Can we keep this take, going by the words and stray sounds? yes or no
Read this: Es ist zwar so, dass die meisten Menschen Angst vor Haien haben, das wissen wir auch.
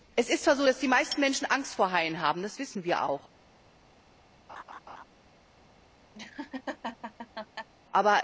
no